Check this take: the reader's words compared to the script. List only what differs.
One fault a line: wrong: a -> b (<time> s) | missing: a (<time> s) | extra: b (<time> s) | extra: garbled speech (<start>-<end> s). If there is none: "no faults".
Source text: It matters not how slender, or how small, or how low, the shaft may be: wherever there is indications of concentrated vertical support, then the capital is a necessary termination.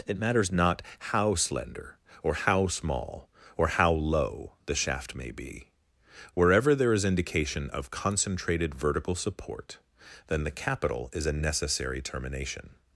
wrong: indications -> indication (7.0 s)